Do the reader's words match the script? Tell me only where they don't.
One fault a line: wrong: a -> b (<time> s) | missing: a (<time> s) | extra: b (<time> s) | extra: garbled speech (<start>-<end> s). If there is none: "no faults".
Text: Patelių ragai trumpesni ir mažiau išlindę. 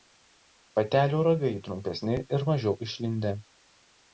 no faults